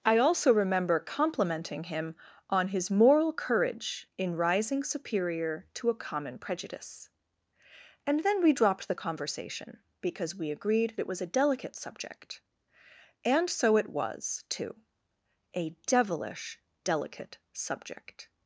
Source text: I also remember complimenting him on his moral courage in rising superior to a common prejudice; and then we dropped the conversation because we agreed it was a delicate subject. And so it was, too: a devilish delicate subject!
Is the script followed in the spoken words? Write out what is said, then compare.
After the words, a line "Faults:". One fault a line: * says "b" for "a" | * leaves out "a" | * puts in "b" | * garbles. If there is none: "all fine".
I also remember complimenting him on his moral courage in rising superior to a common prejudice; and then we dropped the conversation because we agreed it was a delicate subject. And so it was, too: a devilish delicate subject!
Faults:
all fine